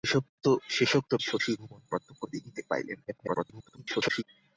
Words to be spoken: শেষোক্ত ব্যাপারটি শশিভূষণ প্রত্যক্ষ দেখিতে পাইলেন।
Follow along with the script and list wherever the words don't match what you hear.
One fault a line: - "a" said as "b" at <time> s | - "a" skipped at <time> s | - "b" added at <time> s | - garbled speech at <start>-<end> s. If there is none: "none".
- "ব্যাপারটি" skipped at 1.1 s
- garbled speech at 3.1-4.2 s